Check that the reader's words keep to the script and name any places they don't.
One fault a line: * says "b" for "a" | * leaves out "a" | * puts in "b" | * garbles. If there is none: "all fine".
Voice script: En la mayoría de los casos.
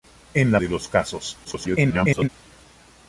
* leaves out "mayoría"
* garbles